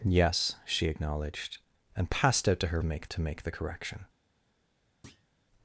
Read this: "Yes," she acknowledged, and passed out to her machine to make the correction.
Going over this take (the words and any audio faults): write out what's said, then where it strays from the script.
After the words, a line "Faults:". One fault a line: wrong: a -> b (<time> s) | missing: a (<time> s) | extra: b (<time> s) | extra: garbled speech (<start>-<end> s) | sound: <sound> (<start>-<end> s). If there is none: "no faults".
"Yes," she acknowledged, and passed out to her make to make the correction.
Faults:
wrong: machine -> make (2.8 s)
sound: thud (5.0-5.3 s)